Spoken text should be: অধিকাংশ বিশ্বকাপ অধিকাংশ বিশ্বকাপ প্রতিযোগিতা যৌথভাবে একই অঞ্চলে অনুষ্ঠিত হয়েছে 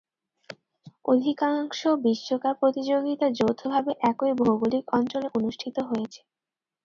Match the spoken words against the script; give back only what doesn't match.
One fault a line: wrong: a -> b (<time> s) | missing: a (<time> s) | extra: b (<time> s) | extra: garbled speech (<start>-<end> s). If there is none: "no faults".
missing: অধিকাংশ বিশ্বকাপ (2.5 s)
extra: ভৌগোলিক (4.4 s)